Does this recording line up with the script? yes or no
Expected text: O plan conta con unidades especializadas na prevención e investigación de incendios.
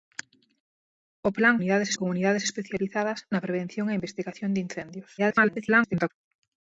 no